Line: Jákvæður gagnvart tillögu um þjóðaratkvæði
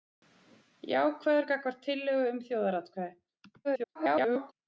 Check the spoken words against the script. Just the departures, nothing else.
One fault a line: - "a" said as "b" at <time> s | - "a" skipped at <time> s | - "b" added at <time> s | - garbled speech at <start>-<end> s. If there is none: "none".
- garbled speech at 3.6-4.5 s